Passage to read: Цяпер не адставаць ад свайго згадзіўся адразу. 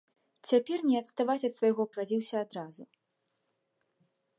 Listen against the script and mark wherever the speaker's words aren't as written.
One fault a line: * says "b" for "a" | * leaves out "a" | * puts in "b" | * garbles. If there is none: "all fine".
all fine